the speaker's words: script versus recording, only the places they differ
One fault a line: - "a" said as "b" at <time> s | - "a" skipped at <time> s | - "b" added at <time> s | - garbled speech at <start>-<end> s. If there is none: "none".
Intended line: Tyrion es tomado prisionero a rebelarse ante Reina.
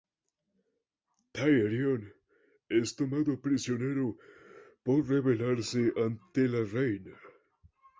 - "a" said as "por" at 4.8 s
- "la" added at 6.5 s